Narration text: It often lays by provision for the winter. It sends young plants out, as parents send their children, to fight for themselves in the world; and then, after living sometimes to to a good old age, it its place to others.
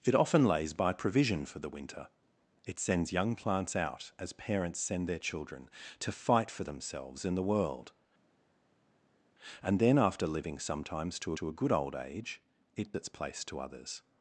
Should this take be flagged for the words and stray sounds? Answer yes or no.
no